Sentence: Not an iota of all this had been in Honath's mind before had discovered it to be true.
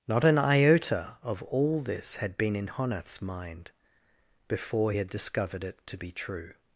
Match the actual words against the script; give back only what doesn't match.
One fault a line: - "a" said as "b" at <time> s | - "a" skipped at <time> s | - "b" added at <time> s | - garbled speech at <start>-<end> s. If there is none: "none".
none